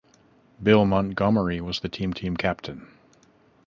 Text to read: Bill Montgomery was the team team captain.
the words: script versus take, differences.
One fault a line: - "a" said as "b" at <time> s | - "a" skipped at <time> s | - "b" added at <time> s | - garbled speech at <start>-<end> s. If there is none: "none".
none